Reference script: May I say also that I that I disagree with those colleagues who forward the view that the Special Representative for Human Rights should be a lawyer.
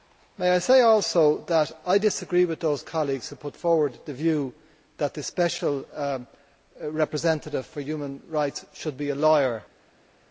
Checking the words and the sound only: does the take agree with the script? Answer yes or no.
no